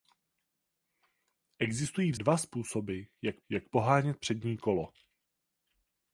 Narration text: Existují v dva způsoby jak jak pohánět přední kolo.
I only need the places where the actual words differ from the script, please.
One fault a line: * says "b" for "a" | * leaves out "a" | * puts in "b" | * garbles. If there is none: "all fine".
all fine